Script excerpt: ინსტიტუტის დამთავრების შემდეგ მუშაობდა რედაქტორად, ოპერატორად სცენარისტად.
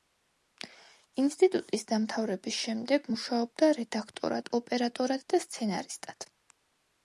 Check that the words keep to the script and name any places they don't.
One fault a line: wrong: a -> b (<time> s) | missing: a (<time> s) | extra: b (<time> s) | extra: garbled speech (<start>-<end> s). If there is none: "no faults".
extra: და (5.3 s)